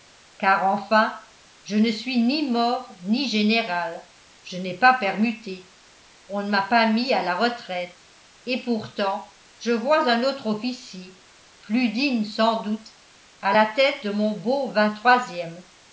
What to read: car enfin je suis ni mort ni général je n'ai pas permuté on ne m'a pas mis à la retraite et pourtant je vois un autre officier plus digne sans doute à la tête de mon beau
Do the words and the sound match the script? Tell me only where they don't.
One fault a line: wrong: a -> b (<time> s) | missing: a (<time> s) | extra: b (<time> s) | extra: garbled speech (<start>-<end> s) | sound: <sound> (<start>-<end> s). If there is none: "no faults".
extra: ne (1.8 s)